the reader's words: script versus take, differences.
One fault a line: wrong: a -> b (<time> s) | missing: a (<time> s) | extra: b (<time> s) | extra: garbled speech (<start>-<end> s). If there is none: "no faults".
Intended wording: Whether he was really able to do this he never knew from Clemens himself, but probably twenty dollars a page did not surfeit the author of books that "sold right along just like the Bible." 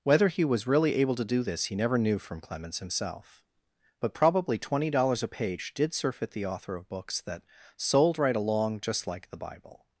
missing: not (5.9 s)